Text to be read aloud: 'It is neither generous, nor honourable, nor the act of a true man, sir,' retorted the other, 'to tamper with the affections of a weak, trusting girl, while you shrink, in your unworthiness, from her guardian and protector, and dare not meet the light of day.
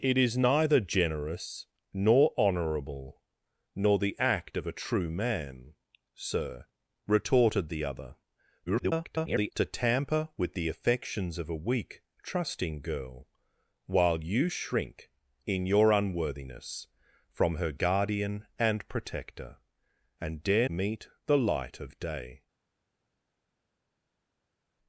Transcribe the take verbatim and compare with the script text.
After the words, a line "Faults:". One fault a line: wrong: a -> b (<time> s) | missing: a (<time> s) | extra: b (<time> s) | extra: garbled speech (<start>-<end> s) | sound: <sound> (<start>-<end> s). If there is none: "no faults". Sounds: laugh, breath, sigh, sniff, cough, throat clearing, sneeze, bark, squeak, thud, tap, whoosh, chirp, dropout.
'It is neither generous, nor honourable, nor the act of a true man, sir,' retorted the other, [garbled] 'to tamper with the affections of a weak, trusting girl, while you shrink, in your unworthiness, from her guardian and protector, and dare meet the light of day.
Faults:
extra: garbled speech (8.7-9.5 s)
missing: not (20.7 s)